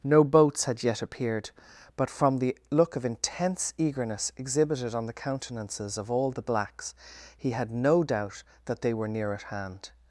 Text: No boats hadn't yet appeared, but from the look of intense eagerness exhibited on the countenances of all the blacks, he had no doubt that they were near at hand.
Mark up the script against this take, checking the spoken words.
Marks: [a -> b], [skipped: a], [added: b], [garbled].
No boats [hadn't -> had] yet appeared, but from the look of intense eagerness exhibited on the countenances of all the blacks, he had no doubt that they were near at hand.